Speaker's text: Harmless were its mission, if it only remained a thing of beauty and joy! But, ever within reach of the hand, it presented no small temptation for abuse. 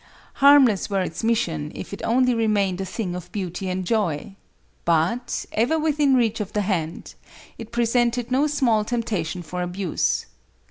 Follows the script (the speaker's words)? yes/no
yes